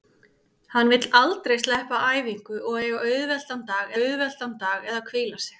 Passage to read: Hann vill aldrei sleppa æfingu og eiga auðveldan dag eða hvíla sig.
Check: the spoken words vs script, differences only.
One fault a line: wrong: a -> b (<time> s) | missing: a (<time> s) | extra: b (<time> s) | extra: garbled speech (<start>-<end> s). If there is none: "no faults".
extra: auðveldan dag (4.0 s)